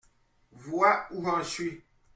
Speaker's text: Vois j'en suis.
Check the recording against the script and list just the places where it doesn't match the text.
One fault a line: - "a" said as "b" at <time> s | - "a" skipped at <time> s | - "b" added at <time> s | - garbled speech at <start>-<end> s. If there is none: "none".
- "où" added at 1.1 s